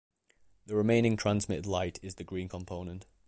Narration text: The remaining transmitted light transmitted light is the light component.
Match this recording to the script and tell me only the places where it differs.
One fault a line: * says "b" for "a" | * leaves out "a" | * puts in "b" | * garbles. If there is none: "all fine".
* leaves out "transmitted light"
* says "green" for "light"